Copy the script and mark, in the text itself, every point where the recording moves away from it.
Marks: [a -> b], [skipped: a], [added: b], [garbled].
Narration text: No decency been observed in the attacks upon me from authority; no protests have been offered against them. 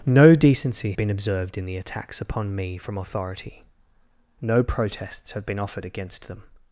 No decency been observed in the attacks upon me from authority; no protests have been offered against them.